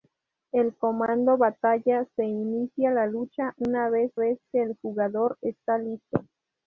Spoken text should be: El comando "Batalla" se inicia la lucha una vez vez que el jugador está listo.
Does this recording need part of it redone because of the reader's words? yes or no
no